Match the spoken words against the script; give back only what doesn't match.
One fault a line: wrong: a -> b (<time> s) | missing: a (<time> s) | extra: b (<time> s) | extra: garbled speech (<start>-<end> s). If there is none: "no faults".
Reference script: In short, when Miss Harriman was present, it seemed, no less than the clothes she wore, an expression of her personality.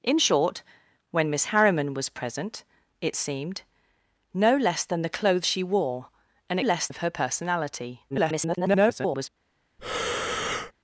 wrong: expression -> less (6.6 s)
extra: garbled speech (8.1-9.3 s)